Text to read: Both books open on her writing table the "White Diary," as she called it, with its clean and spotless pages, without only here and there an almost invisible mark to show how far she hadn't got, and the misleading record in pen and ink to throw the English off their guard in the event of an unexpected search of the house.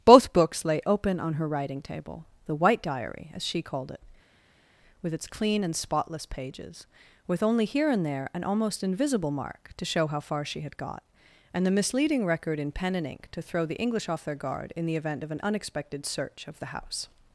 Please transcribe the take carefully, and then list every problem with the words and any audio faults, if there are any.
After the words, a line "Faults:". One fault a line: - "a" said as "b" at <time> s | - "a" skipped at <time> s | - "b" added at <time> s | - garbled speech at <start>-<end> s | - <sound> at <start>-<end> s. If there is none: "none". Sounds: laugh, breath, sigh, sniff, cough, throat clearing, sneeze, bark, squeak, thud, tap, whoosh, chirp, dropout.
Both books lay open on her writing table the "White Diary," as she called it, with its clean and spotless pages, with only here and there an almost invisible mark to show how far she had got, and the misleading record in pen and ink to throw the English off their guard in the event of an unexpected search of the house.
Faults:
- "lay" added at 0.7 s
- "without" said as "with" at 7.3 s
- "hadn't" said as "had" at 10.6 s